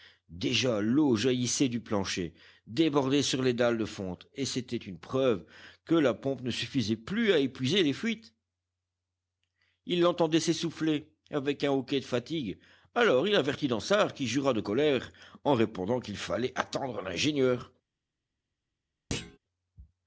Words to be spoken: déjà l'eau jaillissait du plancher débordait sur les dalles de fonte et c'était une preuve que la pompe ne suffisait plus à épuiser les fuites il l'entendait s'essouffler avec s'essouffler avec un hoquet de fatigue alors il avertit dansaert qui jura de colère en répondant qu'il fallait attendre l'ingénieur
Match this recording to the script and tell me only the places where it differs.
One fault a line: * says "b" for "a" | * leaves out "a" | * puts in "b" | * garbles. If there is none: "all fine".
* leaves out "s'essouffler avec"